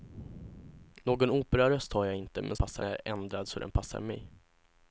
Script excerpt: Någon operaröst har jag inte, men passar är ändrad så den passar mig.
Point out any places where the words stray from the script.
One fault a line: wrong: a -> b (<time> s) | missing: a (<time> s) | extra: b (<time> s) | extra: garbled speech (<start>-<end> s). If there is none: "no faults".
no faults